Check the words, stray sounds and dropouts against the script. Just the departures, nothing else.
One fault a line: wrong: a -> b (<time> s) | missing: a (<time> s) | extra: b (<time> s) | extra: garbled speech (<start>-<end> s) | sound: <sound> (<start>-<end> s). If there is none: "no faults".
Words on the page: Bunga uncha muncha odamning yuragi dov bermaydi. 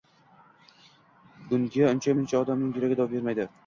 no faults